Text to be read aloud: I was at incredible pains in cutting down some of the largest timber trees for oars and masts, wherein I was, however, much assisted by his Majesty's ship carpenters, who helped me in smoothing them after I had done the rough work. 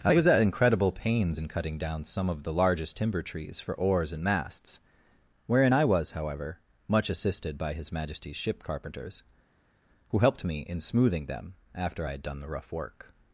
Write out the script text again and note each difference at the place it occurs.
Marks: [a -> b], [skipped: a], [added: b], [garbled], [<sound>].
I was at incredible pains in cutting down some of the largest timber trees for oars and masts, wherein I was, however, much assisted by his Majesty's ship carpenters, who helped me in smoothing them after I had done the rough work.